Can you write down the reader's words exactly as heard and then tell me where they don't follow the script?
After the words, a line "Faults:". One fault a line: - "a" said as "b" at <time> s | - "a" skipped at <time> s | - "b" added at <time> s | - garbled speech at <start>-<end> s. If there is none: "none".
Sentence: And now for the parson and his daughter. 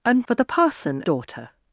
And for the parson daughter.
Faults:
- "now" skipped at 0.3 s
- "and his" skipped at 1.0 s